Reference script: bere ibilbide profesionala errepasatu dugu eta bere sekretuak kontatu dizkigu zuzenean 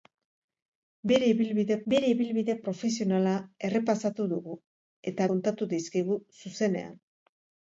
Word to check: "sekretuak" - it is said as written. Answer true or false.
false